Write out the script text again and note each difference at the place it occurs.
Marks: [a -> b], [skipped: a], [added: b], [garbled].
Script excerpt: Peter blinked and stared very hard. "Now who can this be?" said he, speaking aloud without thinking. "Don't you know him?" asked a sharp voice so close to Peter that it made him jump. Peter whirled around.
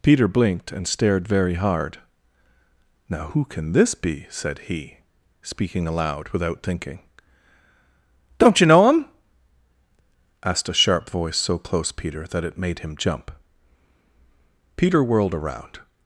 Peter blinked and stared very hard. "Now who can this be?" said he, speaking aloud without thinking. "Don't you know him?" asked a sharp voice so close [skipped: to] Peter that it made him jump. Peter whirled around.